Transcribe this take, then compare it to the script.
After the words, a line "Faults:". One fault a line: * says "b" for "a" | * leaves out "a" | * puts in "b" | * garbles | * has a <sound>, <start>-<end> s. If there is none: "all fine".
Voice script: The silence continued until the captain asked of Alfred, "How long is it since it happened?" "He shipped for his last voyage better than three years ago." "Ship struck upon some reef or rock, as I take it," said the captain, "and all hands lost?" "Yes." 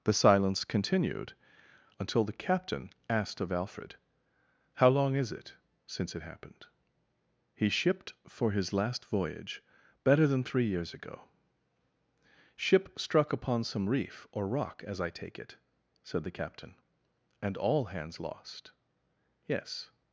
The silence continued until the captain asked of Alfred, "How long is it since it happened?" "He shipped for his last voyage better than three years ago." "Ship struck upon some reef or rock, as I take it," said the captain, "and all hands lost?" "Yes."
Faults:
all fine